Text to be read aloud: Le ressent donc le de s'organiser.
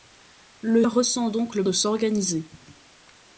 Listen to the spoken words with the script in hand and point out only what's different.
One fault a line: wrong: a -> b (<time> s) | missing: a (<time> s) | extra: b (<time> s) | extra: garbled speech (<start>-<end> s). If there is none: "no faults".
no faults